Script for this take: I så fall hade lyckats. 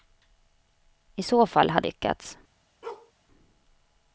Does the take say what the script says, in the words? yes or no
yes